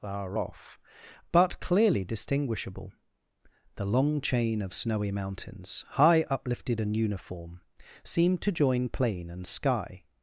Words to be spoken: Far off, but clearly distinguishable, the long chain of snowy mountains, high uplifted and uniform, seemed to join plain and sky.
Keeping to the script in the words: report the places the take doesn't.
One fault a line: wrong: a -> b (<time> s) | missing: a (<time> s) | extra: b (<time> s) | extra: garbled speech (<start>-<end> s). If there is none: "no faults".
no faults